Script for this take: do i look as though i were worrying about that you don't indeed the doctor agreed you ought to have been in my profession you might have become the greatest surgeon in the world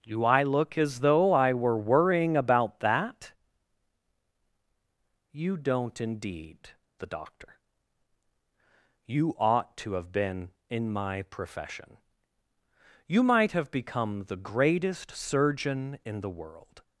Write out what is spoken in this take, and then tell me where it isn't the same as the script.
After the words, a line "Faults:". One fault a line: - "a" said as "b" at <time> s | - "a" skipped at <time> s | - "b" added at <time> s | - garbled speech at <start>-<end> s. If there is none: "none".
do i look as though i were worrying about that you don't indeed the doctor you ought to have been in my profession you might have become the greatest surgeon in the world
Faults:
- "agreed" skipped at 7.6 s